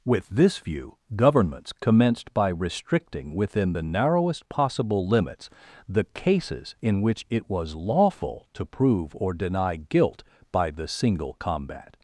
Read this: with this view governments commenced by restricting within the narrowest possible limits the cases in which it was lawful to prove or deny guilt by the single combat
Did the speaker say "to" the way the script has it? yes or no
yes